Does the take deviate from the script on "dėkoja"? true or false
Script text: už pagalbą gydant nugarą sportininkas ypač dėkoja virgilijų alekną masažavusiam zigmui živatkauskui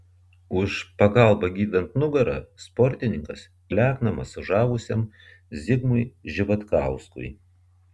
true